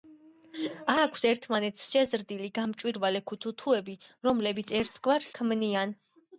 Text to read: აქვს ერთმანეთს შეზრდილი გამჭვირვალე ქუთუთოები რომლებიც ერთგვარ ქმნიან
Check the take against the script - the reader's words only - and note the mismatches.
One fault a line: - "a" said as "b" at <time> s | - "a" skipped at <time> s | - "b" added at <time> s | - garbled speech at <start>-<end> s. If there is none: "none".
none